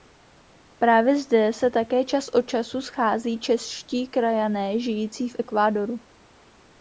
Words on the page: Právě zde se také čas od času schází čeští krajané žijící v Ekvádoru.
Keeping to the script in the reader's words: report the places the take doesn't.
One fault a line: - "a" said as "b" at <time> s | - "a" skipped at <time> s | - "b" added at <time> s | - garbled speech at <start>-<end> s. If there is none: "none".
none